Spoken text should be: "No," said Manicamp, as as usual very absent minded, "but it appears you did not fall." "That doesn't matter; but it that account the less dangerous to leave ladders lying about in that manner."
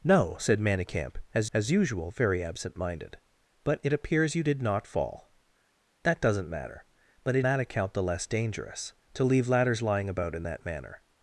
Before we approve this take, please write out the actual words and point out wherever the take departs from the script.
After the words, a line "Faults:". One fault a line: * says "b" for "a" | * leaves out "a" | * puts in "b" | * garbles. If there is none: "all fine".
"No," said Manicamp, as as usual very absent minded, "but it appears you did not fall." "That doesn't matter; but it that account the less dangerous to leave ladders lying about in that manner."
Faults:
all fine